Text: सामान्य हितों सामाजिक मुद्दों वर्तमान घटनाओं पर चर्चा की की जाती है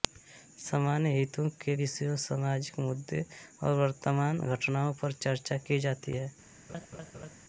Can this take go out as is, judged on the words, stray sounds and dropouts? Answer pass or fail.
fail